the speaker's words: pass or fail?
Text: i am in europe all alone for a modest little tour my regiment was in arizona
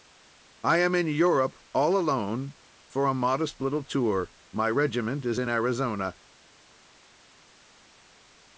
fail